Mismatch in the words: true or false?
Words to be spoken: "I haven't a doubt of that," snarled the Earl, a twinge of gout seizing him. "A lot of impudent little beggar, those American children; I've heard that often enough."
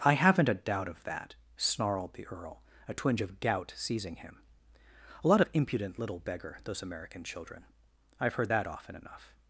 false